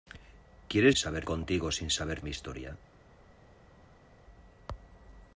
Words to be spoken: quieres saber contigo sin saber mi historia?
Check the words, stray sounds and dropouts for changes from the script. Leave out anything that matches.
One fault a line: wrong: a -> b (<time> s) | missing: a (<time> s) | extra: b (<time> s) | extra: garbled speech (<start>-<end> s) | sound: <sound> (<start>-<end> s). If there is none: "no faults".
no faults